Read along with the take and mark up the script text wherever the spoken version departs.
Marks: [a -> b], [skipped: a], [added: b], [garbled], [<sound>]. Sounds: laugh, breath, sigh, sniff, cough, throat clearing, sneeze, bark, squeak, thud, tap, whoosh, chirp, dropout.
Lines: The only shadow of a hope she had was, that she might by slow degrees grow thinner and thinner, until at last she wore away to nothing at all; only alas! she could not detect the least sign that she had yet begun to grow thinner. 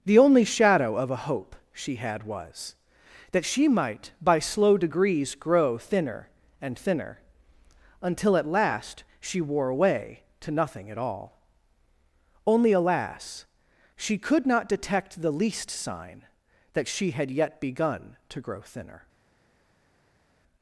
The only shadow of a hope she had was, that she might by slow degrees grow thinner and thinner, until at last she wore away to nothing at all; only alas! she could not detect the least sign that she had yet begun to grow thinner.